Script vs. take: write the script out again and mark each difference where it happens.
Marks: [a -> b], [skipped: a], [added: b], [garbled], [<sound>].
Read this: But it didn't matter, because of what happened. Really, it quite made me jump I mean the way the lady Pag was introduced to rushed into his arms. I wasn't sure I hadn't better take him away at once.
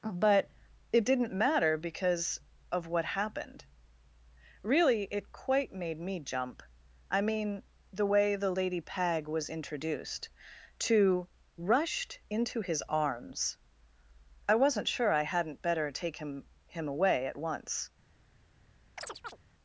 But it didn't matter, because of what happened. Really, it quite made me jump I mean the way the lady Pag was introduced to rushed into his arms. I wasn't sure I hadn't better take him [added: him] away at once. [chirp]